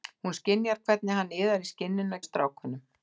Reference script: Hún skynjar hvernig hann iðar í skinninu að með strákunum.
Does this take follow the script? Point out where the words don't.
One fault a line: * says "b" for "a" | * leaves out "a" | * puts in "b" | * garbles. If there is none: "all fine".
all fine